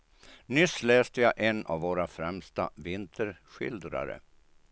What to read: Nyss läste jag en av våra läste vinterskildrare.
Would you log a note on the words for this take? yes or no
yes